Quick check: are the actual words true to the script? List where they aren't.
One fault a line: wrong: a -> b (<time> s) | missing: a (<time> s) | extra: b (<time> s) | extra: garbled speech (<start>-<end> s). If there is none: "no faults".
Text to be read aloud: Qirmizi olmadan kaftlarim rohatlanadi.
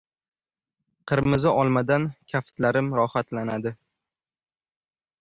no faults